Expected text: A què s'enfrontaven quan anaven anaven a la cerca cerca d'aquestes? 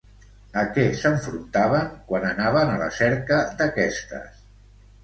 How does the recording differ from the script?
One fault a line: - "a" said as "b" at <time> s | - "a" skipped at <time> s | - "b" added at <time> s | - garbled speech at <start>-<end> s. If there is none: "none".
- "anaven" skipped at 2.8 s
- "cerca" skipped at 3.4 s